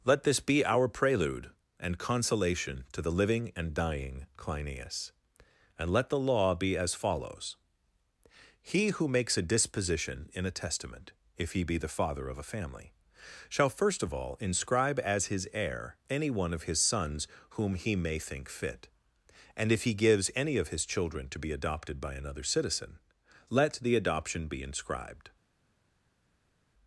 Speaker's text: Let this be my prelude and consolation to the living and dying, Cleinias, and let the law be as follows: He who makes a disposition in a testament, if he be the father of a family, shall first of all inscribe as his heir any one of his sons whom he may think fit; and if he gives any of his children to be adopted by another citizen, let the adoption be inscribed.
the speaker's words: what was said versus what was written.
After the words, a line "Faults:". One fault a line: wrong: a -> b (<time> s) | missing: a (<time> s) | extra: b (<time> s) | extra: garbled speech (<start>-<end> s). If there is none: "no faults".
Let this be our prelude and consolation to the living and dying, Cleinias, and let the law be as follows: He who makes a disposition in a testament, if he be the father of a family, shall first of all inscribe as his heir any one of his sons whom he may think fit; and if he gives any of his children to be adopted by another citizen, let the adoption be inscribed.
Faults:
wrong: my -> our (0.7 s)